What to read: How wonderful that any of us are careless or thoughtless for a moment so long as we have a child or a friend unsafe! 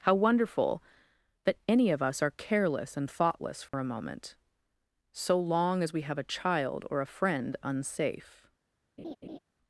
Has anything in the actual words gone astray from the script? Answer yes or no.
yes